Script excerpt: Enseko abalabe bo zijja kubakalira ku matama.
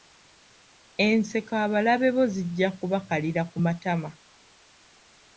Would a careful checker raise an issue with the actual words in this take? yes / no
no